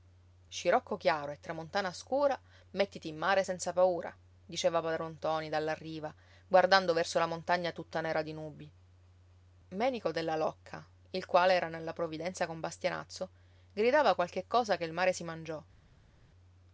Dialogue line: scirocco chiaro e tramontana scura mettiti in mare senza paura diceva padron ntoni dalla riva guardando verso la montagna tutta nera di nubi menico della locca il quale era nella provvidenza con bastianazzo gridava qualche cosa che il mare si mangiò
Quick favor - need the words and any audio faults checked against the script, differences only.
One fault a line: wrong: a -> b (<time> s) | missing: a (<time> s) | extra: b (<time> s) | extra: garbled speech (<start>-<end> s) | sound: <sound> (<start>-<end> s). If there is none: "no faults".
no faults